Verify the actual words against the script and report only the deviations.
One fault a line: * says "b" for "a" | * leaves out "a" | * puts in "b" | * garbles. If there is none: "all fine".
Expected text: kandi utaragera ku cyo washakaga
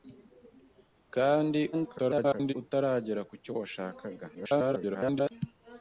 * garbles
* garbles